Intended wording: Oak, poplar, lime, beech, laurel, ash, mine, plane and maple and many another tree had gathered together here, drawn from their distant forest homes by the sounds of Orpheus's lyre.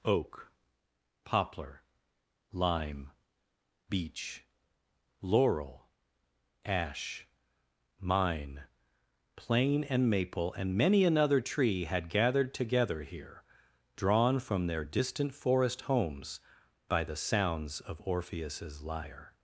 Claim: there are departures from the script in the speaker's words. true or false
false